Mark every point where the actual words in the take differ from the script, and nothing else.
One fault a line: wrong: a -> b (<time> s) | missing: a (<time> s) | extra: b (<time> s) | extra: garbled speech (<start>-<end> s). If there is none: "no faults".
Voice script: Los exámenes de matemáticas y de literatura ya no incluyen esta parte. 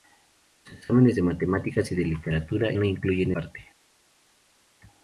missing: ya (2.7 s)
missing: esta (3.3 s)